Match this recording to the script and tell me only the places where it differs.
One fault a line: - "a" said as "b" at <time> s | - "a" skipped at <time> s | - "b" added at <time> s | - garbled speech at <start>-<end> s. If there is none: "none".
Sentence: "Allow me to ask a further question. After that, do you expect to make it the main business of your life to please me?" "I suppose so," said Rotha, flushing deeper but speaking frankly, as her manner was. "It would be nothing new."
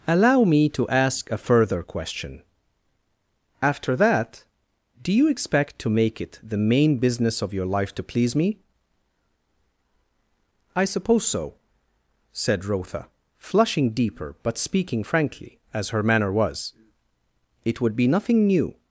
none